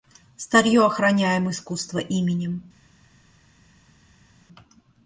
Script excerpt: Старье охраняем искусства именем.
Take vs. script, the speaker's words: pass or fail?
pass